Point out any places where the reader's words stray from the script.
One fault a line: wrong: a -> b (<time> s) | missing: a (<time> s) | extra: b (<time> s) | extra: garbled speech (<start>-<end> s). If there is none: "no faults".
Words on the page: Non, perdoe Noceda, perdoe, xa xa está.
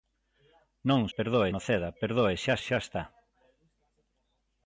no faults